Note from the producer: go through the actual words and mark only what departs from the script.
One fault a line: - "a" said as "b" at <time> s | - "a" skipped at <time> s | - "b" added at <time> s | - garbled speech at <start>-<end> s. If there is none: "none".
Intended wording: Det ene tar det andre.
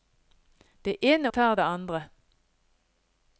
none